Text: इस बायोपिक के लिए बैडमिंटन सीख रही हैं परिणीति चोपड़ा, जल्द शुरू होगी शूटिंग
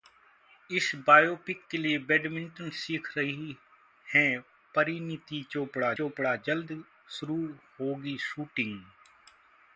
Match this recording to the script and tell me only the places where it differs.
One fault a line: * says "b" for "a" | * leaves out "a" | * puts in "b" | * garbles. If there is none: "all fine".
* puts in "चोपड़ा"